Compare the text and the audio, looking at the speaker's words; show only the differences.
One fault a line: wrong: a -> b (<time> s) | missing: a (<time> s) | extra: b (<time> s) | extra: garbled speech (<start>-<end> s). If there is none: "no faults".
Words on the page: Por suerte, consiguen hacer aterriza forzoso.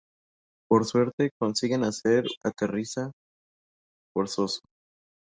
no faults